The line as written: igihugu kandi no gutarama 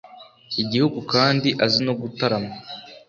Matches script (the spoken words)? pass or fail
fail